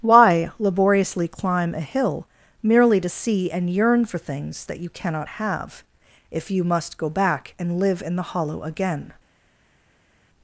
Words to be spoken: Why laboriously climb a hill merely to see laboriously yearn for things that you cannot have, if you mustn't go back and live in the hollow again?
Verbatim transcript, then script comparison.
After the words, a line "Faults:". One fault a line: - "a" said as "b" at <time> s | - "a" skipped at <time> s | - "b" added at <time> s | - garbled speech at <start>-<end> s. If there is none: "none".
Why laboriously climb a hill merely to see and yearn for things that you cannot have, if you must go back and live in the hollow again?
Faults:
- "laboriously" said as "and" at 3.5 s
- "mustn't" said as "must" at 6.6 s